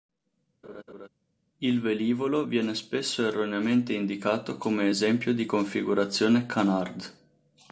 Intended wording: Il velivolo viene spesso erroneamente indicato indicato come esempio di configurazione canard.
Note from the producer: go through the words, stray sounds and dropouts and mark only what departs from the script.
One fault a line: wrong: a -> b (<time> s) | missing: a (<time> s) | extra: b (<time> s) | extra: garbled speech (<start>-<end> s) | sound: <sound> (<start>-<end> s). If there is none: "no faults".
sound: laugh (0.6-1.1 s)
missing: indicato (4.6 s)